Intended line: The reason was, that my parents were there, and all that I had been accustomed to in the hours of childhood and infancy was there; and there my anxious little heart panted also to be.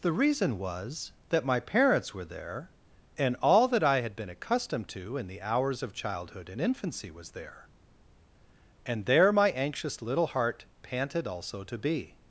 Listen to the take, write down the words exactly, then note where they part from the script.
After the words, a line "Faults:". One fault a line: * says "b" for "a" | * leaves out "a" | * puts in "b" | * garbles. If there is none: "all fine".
The reason was, that my parents were there, and all that I had been accustomed to in the hours of childhood and infancy was there; and there my anxious little heart panted also to be.
Faults:
all fine